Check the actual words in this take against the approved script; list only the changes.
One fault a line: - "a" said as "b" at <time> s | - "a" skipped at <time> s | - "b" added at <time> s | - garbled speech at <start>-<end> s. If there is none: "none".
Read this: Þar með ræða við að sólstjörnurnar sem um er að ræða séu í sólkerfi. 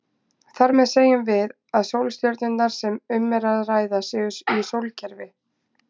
- "ræða" said as "segjum" at 0.9 s